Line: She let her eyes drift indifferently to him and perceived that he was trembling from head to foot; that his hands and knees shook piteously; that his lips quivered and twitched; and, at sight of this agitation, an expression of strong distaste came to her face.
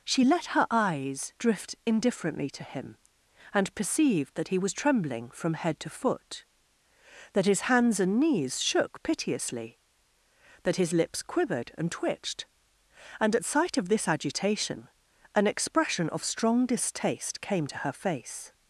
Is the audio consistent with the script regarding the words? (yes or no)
yes